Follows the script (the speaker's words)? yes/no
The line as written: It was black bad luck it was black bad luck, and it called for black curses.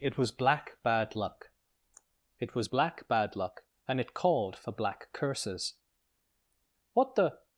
no